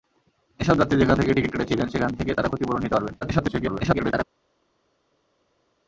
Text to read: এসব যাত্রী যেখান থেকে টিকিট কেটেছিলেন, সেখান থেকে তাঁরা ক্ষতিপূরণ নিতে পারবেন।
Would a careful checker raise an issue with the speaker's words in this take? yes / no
yes